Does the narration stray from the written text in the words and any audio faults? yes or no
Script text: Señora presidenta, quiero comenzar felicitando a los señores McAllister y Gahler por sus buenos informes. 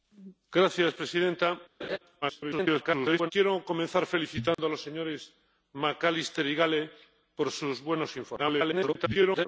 yes